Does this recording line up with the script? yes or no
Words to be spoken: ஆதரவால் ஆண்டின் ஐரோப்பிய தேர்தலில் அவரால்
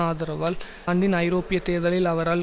yes